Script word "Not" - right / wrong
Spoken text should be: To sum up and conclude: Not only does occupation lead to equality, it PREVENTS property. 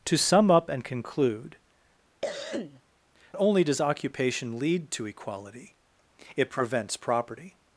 wrong